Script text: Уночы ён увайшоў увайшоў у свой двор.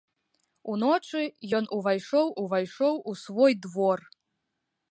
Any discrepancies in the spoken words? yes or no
no